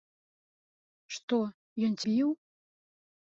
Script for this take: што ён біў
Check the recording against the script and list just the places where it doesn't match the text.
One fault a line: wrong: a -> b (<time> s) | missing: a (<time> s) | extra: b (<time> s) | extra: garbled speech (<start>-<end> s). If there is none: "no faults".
no faults